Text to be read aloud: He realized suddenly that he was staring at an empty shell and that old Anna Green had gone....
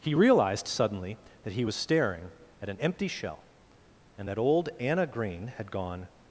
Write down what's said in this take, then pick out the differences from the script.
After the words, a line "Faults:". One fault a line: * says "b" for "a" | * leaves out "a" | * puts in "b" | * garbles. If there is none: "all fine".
He realized suddenly that he was staring at an empty shell and that old Anna Green had gone....
Faults:
all fine